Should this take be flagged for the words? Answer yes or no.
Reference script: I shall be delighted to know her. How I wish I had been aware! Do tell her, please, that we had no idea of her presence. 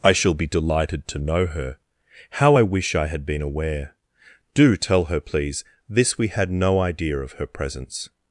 yes